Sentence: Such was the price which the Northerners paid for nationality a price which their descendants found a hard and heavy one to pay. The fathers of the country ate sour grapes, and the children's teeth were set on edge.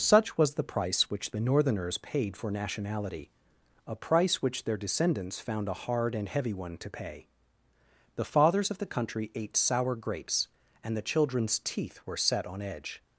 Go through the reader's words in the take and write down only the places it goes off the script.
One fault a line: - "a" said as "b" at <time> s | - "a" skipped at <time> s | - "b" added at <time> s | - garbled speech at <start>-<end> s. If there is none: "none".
none